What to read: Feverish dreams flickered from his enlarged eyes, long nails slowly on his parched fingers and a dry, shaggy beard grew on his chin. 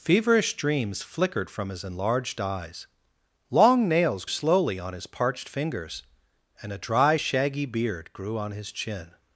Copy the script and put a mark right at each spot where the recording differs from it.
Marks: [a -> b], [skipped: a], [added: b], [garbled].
Feverish dreams flickered from his enlarged eyes, long nails slowly on his parched fingers and a dry, shaggy beard grew on his chin.